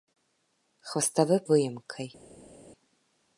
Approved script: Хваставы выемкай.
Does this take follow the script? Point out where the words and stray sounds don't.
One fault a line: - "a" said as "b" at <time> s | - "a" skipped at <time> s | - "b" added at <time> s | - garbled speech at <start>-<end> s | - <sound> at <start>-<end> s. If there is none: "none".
none